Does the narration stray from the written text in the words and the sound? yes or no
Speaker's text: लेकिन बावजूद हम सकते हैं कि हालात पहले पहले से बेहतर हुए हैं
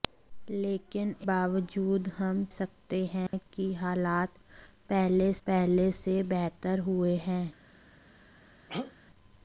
yes